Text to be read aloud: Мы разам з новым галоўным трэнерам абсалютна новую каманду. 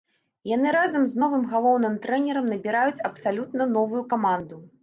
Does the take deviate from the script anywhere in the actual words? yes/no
yes